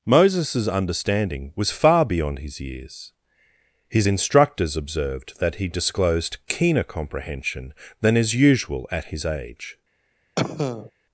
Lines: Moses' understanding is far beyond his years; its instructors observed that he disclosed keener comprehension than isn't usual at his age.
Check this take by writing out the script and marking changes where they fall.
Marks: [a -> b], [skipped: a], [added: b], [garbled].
Moses' understanding [is -> was] far beyond his years; [its -> his] instructors observed that he disclosed keener comprehension than [isn't -> is] usual at his age.